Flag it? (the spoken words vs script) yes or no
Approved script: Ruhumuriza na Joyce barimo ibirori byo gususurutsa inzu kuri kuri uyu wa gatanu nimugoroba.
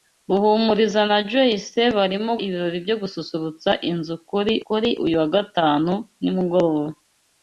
no